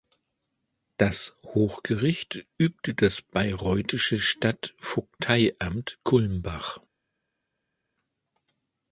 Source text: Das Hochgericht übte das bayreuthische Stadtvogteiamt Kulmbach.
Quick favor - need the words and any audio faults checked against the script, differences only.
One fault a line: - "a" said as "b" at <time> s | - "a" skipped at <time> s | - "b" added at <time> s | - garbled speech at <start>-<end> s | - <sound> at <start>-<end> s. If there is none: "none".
none